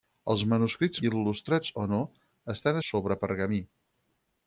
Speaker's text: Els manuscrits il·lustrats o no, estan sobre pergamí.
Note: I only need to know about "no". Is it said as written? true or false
true